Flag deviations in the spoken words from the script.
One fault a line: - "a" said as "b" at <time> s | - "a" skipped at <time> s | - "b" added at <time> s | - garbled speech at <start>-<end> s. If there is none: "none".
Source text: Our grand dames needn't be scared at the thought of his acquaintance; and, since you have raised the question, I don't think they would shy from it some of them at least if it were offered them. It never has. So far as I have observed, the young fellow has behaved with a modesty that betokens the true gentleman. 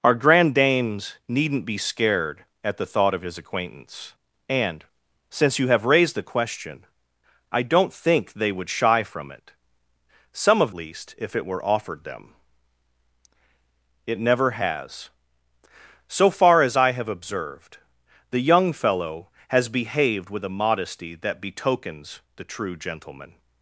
- "them at" skipped at 10.7 s